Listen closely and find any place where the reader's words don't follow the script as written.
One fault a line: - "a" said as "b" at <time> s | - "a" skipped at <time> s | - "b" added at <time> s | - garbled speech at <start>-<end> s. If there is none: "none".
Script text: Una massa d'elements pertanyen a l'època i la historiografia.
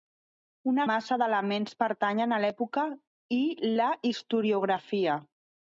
none